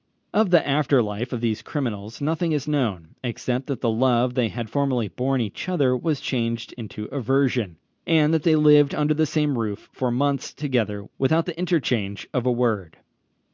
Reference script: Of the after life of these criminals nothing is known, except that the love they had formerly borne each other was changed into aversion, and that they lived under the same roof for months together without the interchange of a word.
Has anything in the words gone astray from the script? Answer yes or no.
no